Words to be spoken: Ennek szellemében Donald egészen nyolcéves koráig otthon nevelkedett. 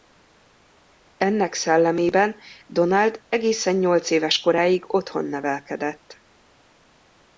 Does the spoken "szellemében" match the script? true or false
true